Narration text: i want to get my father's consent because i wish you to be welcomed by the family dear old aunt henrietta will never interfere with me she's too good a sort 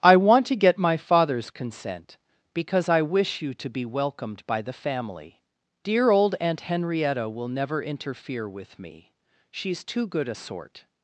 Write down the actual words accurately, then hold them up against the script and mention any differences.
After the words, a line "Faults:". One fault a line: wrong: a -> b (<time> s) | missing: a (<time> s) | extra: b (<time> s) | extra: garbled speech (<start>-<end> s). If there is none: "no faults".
i want to get my father's consent because i wish you to be welcomed by the family dear old aunt henrietta will never interfere with me she's too good a sort
Faults:
no faults